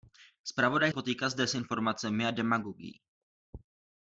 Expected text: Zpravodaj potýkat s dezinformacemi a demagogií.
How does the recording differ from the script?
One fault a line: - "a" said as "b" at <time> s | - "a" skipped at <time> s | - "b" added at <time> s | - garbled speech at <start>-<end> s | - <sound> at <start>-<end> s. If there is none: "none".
none